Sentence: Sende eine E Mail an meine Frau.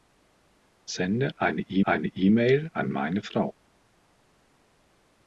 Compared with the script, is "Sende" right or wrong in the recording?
right